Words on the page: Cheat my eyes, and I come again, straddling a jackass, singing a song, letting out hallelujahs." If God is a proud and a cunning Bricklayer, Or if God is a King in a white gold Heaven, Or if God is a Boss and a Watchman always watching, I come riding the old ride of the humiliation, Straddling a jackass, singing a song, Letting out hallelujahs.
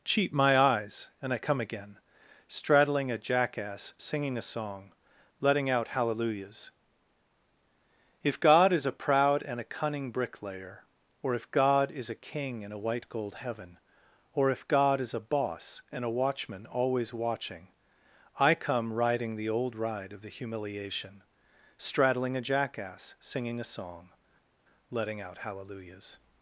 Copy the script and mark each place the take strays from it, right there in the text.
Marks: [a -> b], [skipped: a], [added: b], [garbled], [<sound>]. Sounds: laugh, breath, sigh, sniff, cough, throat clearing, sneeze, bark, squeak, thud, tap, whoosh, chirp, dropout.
Cheat my eyes, and I come again, straddling a jackass, singing a song, letting out hallelujahs." If God is a proud and a cunning Bricklayer, Or if God is a King in a white gold Heaven, Or if God is a Boss and a Watchman always watching, I come riding the old ride of the humiliation, Straddling a jackass, singing a song, Letting out hallelujahs.